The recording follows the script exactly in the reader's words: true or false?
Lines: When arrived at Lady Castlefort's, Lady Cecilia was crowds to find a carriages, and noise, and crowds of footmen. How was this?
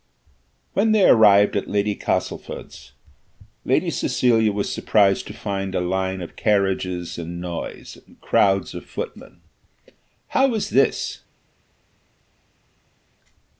false